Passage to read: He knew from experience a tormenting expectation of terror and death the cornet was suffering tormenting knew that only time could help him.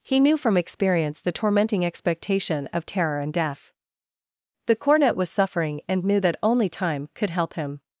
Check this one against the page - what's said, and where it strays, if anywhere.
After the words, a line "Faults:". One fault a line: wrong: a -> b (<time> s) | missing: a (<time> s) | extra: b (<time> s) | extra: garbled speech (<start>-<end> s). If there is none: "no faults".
He knew from experience the tormenting expectation of terror and death the cornet was suffering and knew that only time could help him.
Faults:
wrong: a -> the (1.2 s)
wrong: tormenting -> and (5.9 s)